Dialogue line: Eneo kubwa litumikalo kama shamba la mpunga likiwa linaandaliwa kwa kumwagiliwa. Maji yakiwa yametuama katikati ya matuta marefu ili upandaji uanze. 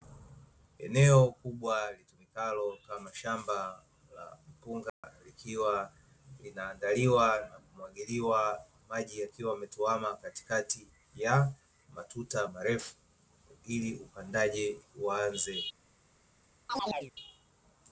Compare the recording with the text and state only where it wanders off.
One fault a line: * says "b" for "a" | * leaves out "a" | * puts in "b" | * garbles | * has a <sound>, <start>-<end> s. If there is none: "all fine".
* has a dropout, 4.9-5.0 s
* says "na" for "kwa"
* has a chirp, 16.7-17.1 s